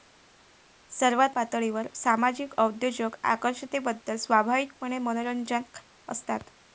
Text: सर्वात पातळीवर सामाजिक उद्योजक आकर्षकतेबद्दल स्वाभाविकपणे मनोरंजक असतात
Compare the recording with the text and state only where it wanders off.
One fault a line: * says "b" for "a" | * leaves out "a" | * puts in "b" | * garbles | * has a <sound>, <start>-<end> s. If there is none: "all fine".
all fine